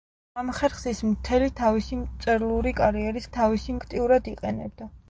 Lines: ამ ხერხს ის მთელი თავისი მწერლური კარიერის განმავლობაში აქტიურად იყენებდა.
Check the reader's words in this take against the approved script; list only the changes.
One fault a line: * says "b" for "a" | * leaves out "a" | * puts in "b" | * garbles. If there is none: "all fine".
* says "თავისი" for "განმავლობაში"